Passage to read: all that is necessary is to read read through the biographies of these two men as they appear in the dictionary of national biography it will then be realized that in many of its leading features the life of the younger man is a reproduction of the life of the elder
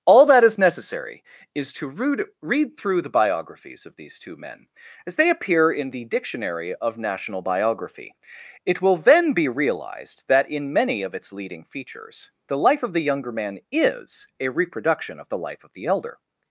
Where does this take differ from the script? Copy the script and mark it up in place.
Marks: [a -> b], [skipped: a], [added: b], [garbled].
all that is necessary is to read read through the biographies of these two men as they appear in the dictionary of national biography it will then be realized that in many of its leading features the life of the younger man is a reproduction of the life of the elder